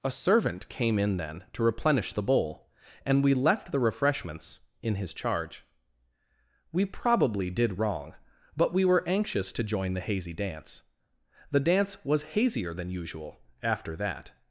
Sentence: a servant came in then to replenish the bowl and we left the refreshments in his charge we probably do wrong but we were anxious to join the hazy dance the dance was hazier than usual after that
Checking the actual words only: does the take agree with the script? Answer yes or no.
no